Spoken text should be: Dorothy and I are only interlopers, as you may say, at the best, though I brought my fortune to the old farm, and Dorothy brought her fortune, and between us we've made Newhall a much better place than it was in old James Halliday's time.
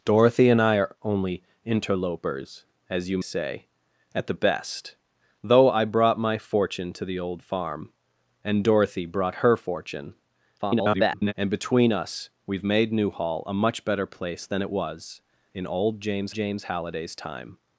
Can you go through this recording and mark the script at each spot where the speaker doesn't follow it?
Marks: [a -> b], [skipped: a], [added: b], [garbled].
Dorothy and I are only interlopers, as you [skipped: may] say, at the best, though I brought my fortune to the old farm, and Dorothy brought her fortune, [garbled] and between us we've made Newhall a much better place than it was in old James [added: James] Halliday's time.